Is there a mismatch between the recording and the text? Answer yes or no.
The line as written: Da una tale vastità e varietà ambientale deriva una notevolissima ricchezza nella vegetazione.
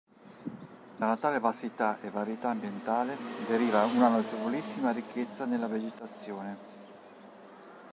no